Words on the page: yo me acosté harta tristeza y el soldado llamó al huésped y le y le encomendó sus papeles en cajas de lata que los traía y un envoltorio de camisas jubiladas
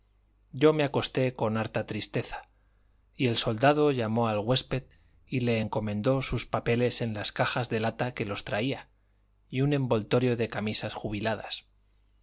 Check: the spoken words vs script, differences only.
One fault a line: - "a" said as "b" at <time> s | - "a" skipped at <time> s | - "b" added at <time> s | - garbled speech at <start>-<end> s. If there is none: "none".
- "con" added at 1.4 s
- "y le" skipped at 5.6 s
- "las" added at 7.1 s